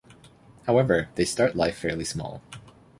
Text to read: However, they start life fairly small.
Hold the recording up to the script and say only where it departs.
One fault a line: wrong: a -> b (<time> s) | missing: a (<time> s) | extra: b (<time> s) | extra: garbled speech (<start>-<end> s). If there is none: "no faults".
no faults